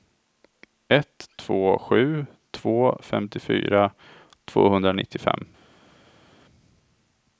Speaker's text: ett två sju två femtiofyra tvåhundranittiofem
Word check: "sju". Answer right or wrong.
right